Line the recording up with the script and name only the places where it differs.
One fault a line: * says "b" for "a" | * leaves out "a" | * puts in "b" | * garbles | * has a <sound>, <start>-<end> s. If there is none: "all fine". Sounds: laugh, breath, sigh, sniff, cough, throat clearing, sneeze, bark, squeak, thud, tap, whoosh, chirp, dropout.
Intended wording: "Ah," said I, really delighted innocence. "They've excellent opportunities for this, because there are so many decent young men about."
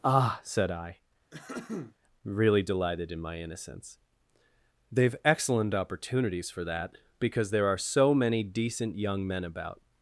* has a throat clearing, 1.3-2.0 s
* puts in "in my"
* says "that" for "this"